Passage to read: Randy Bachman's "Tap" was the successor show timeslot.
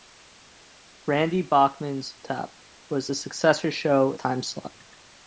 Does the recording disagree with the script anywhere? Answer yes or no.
no